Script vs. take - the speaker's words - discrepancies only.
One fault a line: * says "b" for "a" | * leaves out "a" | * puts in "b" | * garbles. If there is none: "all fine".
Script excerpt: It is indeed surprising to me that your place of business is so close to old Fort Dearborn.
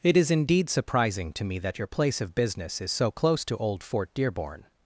all fine